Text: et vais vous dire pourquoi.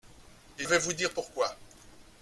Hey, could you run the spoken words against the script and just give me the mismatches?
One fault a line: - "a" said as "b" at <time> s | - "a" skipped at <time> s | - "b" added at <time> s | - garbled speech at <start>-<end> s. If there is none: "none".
none